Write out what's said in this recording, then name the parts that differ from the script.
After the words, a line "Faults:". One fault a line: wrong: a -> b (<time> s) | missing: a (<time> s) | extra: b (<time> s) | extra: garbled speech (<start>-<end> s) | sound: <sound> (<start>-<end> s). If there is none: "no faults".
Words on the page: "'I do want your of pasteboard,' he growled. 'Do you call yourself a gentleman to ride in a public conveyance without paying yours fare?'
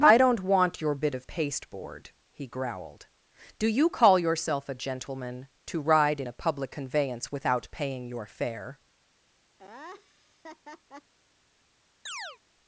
"'I don't want your bit of pasteboard,' he growled. 'Do you call yourself a gentleman to ride in a public conveyance without paying your fare?'
Faults:
wrong: do -> don't (0.2 s)
extra: bit (0.9 s)
wrong: yours -> your (8.1 s)
sound: laugh (9.6-11.1 s)
sound: chirp (12.1-12.4 s)